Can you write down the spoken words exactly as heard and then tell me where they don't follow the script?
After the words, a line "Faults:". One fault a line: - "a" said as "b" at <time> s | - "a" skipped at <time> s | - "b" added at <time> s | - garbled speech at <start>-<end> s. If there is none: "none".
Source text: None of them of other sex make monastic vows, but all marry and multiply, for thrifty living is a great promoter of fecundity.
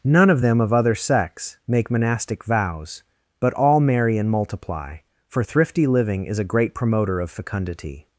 None of them of other sex make monastic vows, but all marry and multiply, for thrifty living is a great promoter of fecundity.
Faults:
none